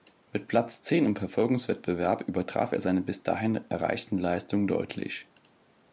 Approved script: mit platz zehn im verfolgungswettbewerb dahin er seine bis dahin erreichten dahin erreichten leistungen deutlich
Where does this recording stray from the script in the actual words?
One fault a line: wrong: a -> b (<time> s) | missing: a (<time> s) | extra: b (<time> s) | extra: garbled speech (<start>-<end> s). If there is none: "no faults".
wrong: dahin -> übertraf (2.2 s)
missing: dahin erreichten (4.2 s)